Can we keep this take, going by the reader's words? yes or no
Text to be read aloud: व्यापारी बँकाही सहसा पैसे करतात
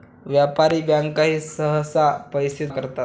yes